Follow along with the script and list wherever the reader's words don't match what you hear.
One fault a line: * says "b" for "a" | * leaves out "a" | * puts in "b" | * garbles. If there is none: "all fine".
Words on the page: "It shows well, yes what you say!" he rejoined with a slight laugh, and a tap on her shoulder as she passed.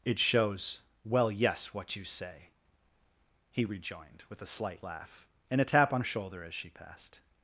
* leaves out "her"